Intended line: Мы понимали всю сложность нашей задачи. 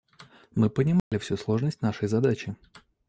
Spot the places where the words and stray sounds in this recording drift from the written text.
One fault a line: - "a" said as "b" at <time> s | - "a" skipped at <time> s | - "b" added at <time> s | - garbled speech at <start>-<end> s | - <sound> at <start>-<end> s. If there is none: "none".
- dropout at 1.0-1.1 s